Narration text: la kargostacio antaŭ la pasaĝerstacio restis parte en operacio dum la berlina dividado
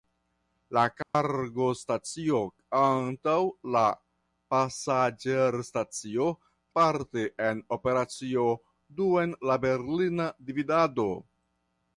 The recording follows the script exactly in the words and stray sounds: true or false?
false